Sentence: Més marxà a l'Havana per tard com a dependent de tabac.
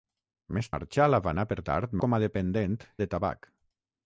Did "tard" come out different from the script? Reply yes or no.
no